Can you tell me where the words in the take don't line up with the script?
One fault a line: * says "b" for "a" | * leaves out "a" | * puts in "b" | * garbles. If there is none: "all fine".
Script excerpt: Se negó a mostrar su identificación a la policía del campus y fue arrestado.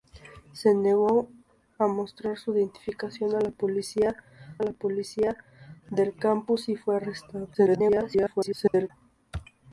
* puts in "la policía"
* garbles